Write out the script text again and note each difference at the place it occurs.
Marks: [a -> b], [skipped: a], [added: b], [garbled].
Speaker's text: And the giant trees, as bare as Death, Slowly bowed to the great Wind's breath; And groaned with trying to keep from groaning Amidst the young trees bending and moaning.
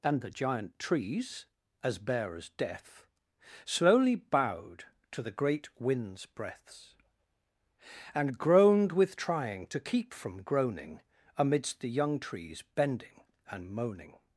And the giant trees, as bare as Death, Slowly bowed to the great Wind's [breath; -> breaths] And groaned with trying to keep from groaning Amidst the young trees bending and moaning.